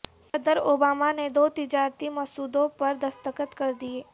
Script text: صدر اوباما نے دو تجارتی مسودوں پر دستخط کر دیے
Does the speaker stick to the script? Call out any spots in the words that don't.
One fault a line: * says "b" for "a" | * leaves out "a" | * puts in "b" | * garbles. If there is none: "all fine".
all fine